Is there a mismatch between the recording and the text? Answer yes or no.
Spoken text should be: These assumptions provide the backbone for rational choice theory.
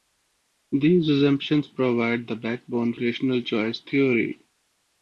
yes